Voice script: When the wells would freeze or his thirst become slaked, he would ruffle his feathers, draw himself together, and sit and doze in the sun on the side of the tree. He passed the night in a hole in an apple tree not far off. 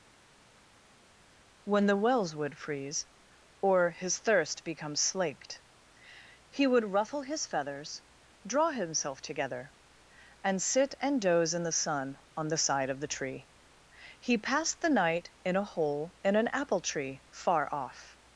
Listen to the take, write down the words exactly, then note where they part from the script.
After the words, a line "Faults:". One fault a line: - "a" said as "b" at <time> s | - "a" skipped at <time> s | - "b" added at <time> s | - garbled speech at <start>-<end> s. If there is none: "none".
When the wells would freeze or his thirst become slaked, he would ruffle his feathers, draw himself together, and sit and doze in the sun on the side of the tree. He passed the night in a hole in an apple tree far off.
Faults:
- "not" skipped at 17.2 s